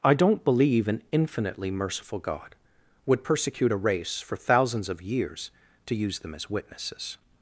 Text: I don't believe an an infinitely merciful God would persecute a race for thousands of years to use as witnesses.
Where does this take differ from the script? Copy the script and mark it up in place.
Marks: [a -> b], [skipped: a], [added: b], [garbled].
I don't believe an [skipped: an] infinitely merciful God would persecute a race for thousands of years to use [added: them] as witnesses.